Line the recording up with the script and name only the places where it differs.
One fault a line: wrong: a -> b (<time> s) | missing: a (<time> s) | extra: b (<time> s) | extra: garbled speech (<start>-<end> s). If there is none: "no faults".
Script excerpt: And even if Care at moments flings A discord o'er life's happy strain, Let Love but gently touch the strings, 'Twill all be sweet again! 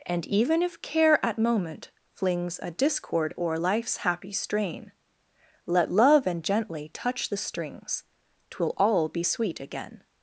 wrong: moments -> moment (1.4 s)
wrong: but -> and (6.3 s)